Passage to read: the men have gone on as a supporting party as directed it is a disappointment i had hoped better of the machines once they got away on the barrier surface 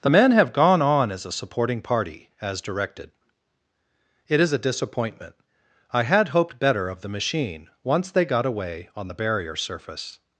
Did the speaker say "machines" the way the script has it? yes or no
no